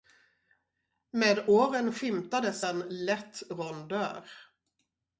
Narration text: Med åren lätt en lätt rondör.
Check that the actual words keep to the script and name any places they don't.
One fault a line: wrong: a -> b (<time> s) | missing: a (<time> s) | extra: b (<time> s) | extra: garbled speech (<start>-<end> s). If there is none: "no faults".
wrong: lätt -> skymtades (1.9 s)